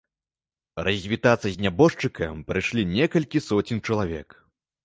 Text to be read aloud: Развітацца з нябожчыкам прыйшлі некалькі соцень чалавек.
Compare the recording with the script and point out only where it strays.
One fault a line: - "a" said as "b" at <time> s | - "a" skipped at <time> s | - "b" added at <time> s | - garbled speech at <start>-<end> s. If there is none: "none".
none